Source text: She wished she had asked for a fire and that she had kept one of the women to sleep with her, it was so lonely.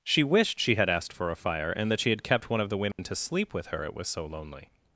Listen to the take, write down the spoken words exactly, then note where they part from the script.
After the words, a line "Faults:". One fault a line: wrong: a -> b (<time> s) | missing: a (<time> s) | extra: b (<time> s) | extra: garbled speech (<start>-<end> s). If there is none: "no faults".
She wished she had asked for a fire and that she had kept one of the women to sleep with her, it was so lonely.
Faults:
no faults